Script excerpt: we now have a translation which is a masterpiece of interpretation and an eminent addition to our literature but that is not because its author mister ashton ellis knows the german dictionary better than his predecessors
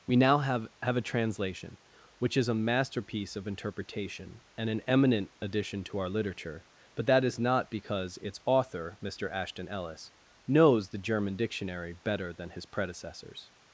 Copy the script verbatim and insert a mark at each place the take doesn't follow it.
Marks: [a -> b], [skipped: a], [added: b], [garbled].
we now have [added: have] a translation which is a masterpiece of interpretation and an eminent addition to our literature but that is not because its author mister ashton ellis knows the german dictionary better than his predecessors